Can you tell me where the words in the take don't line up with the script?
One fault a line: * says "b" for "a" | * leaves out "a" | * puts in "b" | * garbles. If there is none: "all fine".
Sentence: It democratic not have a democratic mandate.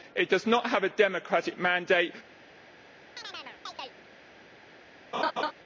* says "does" for "democratic"